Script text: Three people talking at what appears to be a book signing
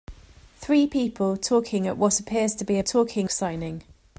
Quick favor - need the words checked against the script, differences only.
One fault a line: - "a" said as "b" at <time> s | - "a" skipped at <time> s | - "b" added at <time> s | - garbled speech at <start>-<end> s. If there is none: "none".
- "book" said as "talking" at 2.8 s